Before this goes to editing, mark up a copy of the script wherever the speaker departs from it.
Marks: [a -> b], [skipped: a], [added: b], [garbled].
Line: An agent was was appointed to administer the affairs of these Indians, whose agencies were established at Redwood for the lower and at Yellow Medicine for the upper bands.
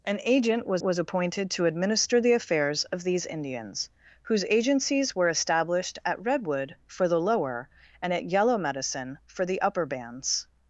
An agent was was appointed to administer the affairs of these Indians, whose agencies were established at Redwood for the lower and at Yellow Medicine for the upper bands.